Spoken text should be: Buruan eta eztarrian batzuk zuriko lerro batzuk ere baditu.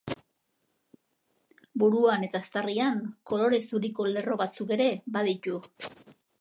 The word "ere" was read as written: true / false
true